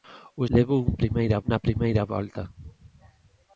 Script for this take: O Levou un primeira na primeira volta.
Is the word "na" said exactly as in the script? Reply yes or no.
yes